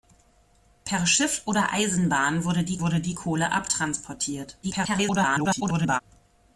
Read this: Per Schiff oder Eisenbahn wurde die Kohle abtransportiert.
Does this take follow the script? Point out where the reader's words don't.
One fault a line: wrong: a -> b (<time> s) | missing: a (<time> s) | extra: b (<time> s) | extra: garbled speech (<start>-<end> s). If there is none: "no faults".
extra: wurde die (2.8 s)
extra: garbled speech (4.6-6.0 s)